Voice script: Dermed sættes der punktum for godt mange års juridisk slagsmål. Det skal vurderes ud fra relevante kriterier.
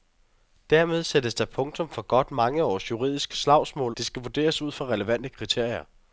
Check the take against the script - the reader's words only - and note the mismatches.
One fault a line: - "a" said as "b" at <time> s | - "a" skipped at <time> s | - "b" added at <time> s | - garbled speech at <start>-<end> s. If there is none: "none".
none